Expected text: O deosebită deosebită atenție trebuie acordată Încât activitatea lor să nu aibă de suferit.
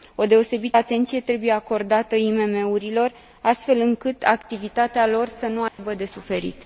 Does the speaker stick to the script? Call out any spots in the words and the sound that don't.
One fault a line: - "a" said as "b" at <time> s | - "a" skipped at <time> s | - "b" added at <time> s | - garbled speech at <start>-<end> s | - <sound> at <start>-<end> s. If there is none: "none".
- "deosebită" skipped at 0.8 s
- "IMM urilor astfel" added at 2.2 s
- dropout at 5.7-5.8 s